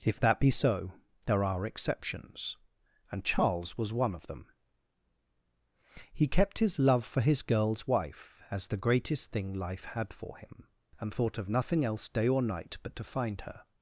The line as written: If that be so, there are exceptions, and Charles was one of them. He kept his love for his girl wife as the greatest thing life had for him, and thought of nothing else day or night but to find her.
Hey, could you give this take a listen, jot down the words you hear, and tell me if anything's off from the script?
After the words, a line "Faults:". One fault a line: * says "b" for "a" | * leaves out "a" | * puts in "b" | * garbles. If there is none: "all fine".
If that be so, there are exceptions, and Charles was one of them. He kept his love for his girls wife as the greatest thing life had for him, and thought of nothing else day or night but to find her.
Faults:
* says "girls" for "girl"